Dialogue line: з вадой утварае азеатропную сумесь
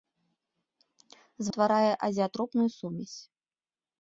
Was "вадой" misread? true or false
true